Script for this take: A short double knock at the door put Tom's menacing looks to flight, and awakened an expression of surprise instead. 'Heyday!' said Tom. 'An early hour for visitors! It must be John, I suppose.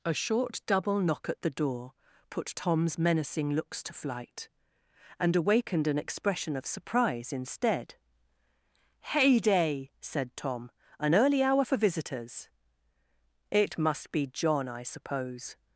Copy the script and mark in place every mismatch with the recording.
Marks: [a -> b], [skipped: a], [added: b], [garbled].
A short double knock at the door put Tom's menacing looks to flight, and awakened an expression of surprise instead. 'Heyday!' said Tom. 'An early hour for visitors! It must be John, I suppose.